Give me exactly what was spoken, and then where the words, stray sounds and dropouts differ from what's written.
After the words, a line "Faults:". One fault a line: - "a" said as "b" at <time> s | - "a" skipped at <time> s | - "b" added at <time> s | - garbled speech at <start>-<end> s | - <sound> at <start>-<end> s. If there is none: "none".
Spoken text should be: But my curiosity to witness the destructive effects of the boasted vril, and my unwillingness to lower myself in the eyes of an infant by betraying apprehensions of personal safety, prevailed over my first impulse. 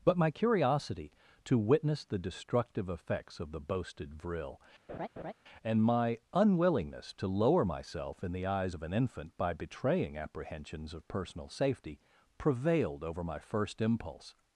But my curiosity to witness the destructive effects of the boasted vril, and my unwillingness to lower myself in the eyes of an infant by betraying apprehensions of personal safety, prevailed over my first impulse.
Faults:
- laugh at 4.9-5.3 s